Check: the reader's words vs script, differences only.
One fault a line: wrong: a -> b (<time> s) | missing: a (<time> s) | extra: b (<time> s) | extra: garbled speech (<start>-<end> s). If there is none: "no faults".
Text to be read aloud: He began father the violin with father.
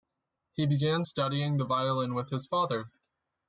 wrong: father -> studying (1.0 s)
extra: his (2.3 s)